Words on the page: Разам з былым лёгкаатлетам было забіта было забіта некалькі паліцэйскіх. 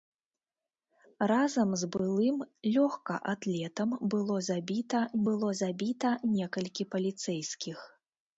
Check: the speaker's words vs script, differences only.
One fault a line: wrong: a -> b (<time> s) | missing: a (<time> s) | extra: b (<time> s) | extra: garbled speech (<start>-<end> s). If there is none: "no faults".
no faults